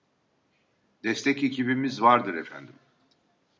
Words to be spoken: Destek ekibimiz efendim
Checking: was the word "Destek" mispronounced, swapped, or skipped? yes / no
no